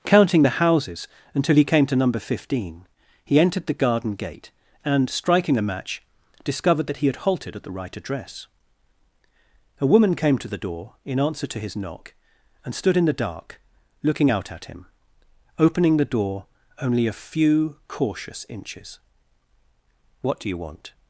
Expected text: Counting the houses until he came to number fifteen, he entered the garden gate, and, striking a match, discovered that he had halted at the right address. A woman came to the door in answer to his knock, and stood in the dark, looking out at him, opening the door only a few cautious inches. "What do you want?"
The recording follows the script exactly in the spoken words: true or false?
true